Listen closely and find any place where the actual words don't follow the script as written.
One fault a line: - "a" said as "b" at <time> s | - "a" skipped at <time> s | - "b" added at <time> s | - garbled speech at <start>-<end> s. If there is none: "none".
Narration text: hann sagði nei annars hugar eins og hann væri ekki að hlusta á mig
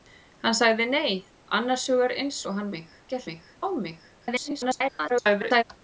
- "væri" said as "mig" at 2.8 s
- "hlusta" said as "mig" at 3.3 s
- garbled speech at 4.2-5.6 s